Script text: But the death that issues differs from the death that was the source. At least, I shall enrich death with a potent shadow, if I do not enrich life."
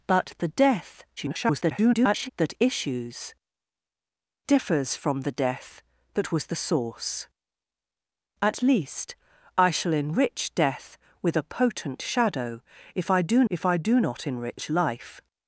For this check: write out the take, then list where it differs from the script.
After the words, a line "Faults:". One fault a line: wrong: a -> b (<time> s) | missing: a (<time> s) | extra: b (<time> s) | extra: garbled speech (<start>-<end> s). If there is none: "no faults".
But the death [garbled] that issues differs from the death that was the source. At least, I shall enrich death with a potent shadow, if I do if I do not enrich life."
Faults:
extra: garbled speech (1.2-2.3 s)
extra: if I do (13.5 s)